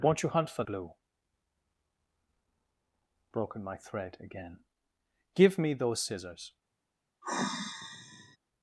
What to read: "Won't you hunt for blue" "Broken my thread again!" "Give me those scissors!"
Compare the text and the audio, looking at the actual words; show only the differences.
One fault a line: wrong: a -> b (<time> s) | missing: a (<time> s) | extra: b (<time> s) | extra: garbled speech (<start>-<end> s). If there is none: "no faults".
no faults